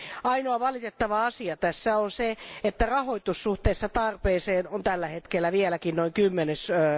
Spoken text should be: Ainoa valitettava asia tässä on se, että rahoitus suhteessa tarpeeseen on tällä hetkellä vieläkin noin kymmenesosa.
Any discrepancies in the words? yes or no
no